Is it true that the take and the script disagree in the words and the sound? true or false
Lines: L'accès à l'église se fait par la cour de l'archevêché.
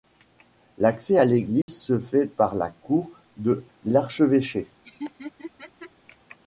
true